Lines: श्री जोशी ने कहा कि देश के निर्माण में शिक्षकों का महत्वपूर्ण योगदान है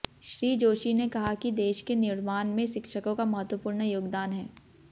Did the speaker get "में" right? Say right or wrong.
right